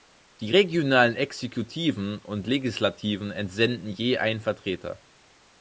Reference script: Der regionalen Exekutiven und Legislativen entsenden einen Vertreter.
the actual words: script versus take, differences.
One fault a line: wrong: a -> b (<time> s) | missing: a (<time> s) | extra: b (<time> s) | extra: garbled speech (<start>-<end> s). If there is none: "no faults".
wrong: Der -> Die (0.4 s)
extra: je (3.9 s)